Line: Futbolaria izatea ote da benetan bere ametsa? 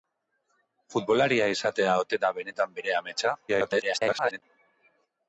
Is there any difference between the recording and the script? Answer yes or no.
yes